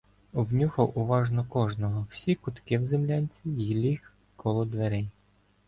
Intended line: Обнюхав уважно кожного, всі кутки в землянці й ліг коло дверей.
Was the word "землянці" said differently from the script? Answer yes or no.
no